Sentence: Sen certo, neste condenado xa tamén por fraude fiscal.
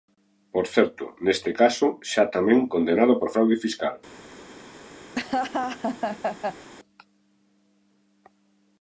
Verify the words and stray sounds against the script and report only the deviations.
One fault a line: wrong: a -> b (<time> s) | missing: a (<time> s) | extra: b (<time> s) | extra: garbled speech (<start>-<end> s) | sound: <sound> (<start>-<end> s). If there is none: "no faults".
wrong: Sen -> Por (0.5 s)
wrong: condenado -> caso (1.6 s)
extra: condenado (2.7 s)
sound: laugh (5.1-6.7 s)